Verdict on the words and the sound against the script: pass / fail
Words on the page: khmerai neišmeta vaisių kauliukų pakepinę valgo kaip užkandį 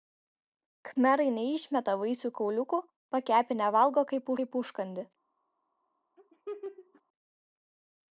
fail